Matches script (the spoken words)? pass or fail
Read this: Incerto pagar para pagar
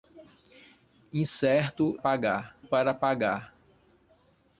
pass